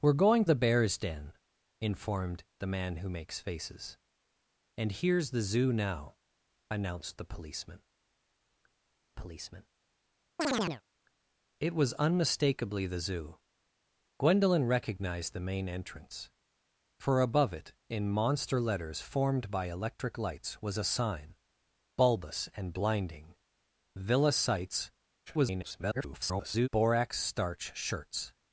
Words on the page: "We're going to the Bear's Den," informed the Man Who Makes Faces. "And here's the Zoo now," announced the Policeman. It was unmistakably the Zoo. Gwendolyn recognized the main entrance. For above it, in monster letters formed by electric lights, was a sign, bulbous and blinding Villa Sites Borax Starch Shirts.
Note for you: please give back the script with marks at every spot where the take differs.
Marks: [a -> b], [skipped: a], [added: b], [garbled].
"We're going [skipped: to] the Bear's Den," informed the Man Who Makes Faces. "And here's the Zoo now," announced the Policeman. [added: Policeman] It was unmistakably the Zoo. Gwendolyn recognized the main entrance. For above it, in monster letters formed by electric lights, was a sign, bulbous and blinding Villa Sites [garbled] Borax Starch Shirts.